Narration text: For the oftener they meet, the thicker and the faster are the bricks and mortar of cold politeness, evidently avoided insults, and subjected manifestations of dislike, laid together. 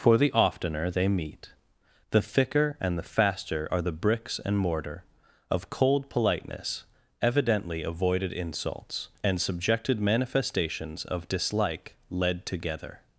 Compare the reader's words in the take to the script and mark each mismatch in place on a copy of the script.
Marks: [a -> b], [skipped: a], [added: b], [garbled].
For the oftener they meet, the thicker and the faster are the bricks and mortar of cold politeness, evidently avoided insults, and subjected manifestations of dislike, [laid -> led] together.